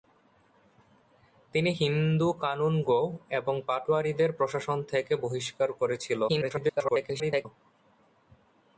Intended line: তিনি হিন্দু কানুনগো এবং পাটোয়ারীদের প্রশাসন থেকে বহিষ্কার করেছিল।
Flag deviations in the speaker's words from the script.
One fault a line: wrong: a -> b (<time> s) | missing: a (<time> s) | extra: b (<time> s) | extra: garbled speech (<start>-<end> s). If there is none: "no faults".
extra: garbled speech (6.3-7.5 s)